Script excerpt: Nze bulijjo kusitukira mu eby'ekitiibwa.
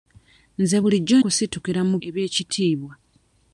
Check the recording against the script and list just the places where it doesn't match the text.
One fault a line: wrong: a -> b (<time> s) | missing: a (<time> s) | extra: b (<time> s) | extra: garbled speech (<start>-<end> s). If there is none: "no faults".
no faults